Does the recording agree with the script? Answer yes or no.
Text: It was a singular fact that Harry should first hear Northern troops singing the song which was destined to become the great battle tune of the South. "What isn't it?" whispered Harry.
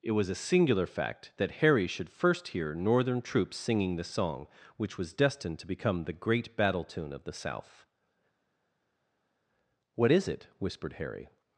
no